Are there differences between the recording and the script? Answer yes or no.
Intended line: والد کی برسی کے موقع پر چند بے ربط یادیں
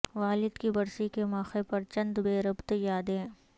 no